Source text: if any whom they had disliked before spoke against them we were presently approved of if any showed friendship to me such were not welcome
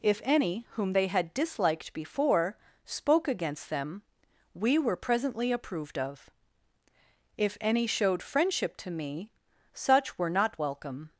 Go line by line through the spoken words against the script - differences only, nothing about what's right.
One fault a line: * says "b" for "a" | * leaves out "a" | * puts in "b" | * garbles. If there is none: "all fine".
all fine